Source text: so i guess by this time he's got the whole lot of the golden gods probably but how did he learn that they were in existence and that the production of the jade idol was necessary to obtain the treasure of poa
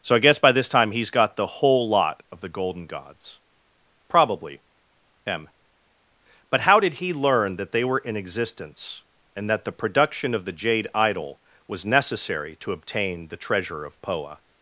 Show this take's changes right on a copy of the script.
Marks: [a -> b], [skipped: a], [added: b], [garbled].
so i guess by this time he's got the whole lot of the golden gods probably [added: m] but how did he learn that they were in existence and that the production of the jade idol was necessary to obtain the treasure of poa